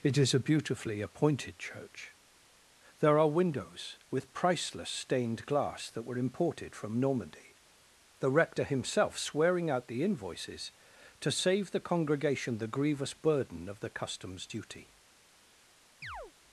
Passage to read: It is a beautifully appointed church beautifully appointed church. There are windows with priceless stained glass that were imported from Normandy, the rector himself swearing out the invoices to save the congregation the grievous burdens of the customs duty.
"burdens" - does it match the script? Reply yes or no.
no